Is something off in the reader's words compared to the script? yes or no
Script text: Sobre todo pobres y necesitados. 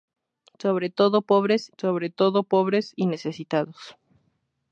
yes